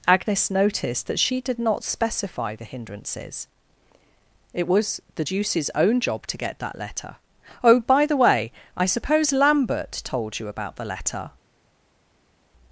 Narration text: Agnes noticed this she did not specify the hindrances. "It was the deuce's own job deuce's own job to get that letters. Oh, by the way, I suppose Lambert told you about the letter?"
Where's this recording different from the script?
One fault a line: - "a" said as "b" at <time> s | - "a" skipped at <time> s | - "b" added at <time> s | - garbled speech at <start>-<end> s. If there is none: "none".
- "this" said as "that" at 1.1 s
- "deuce's own job" skipped at 6.3 s
- "letters" said as "letter" at 6.8 s